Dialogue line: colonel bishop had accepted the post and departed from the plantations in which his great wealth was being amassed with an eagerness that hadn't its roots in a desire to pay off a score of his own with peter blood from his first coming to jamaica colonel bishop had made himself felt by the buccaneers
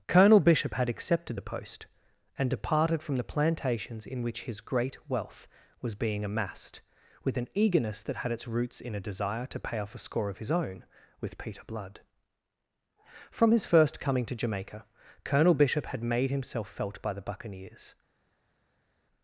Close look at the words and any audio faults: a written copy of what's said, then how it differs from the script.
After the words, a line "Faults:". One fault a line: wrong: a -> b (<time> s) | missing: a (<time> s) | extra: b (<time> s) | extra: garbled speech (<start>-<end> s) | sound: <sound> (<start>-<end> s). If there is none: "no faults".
colonel bishop had accepted the post and departed from the plantations in which his great wealth was being amassed with an eagerness that had its roots in a desire to pay off a score of his own with peter blood from his first coming to jamaica colonel bishop had made himself felt by the buccaneers
Faults:
wrong: hadn't -> had (8.2 s)